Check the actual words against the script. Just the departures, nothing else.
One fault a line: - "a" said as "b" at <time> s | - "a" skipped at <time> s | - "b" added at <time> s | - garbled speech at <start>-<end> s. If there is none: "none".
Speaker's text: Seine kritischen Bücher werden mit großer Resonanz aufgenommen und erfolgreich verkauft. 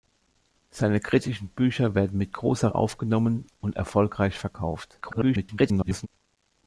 - "Resonanz" skipped at 2.7 s
- garbled speech at 5.0-6.1 s